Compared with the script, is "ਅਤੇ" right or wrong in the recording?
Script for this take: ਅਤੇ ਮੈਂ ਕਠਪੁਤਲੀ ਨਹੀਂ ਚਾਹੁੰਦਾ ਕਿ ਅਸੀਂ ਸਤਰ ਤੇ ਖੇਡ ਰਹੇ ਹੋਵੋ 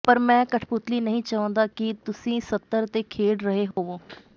wrong